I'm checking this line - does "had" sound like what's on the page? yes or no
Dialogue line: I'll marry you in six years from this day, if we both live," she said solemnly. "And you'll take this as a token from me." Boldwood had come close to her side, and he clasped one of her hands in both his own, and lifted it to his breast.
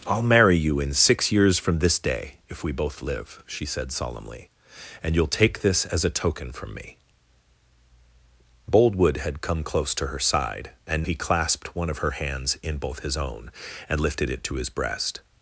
yes